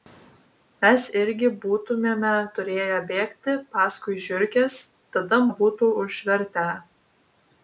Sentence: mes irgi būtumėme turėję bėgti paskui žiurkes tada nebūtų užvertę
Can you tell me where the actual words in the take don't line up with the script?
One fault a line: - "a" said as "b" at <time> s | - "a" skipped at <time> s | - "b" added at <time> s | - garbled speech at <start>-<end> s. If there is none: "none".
none